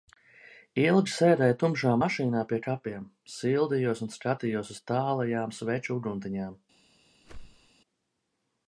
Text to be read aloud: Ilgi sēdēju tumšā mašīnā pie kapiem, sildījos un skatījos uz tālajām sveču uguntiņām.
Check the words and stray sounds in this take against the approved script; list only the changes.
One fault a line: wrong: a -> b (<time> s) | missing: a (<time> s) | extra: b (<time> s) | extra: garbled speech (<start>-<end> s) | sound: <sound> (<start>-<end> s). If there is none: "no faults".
sound: whoosh (7.2-7.7 s)